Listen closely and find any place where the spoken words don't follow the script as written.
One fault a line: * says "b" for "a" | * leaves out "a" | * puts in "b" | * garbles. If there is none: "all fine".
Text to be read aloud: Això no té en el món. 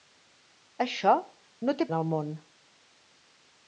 all fine